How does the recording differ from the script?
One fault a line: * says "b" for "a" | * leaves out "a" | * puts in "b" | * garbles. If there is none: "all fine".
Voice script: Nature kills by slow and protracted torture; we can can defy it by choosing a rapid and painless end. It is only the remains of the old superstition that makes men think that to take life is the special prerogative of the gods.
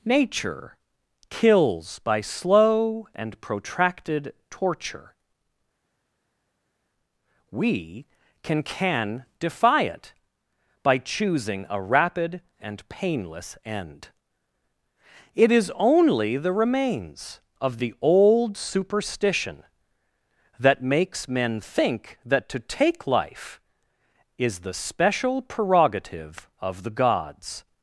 all fine